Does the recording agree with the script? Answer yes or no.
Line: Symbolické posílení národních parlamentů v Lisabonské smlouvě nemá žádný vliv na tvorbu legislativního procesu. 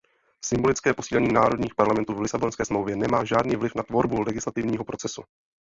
yes